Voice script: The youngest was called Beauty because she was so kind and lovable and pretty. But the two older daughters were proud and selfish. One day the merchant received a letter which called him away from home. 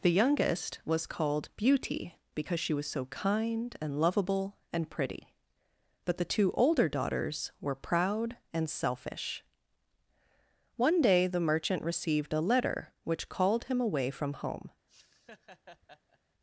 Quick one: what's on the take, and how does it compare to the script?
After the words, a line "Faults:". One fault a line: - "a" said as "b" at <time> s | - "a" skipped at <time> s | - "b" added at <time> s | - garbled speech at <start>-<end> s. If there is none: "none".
The youngest was called Beauty because she was so kind and lovable and pretty. But the two older daughters were proud and selfish. One day the merchant received a letter which called him away from home.
Faults:
none